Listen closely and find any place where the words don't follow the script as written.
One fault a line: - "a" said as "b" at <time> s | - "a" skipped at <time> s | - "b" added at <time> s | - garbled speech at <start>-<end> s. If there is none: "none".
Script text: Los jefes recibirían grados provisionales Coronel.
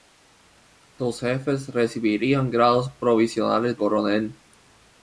none